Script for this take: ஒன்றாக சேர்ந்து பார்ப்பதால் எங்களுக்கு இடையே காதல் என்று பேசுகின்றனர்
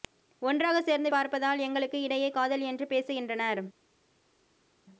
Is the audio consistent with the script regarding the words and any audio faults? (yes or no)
yes